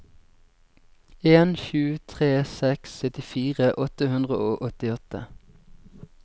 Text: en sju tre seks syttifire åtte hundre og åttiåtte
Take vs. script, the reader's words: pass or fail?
pass